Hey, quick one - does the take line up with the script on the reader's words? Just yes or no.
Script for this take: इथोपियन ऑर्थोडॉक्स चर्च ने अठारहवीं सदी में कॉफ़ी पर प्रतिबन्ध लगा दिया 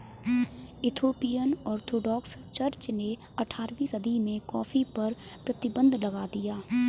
yes